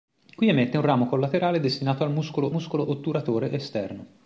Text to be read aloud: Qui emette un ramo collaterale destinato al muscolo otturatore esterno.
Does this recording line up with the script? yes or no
no